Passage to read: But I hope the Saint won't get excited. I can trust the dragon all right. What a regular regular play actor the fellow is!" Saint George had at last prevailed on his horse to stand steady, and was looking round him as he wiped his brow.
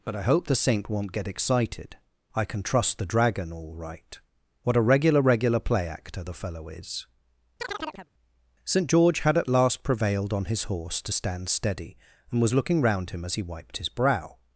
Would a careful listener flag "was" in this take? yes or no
no